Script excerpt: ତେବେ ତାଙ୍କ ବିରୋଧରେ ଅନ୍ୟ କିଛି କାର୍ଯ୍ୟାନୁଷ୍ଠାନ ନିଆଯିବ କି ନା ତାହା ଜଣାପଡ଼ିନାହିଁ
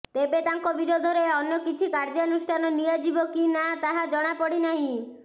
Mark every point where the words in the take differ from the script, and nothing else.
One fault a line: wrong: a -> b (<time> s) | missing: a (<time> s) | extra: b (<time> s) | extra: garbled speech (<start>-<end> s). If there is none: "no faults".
no faults